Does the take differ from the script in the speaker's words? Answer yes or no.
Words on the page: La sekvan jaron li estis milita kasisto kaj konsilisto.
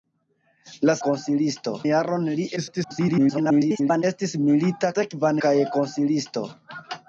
yes